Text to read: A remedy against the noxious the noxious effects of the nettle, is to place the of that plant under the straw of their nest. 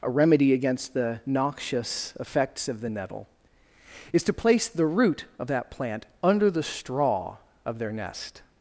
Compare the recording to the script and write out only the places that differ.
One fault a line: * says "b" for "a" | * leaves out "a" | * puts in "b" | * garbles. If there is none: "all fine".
* leaves out "the noxious"
* puts in "root"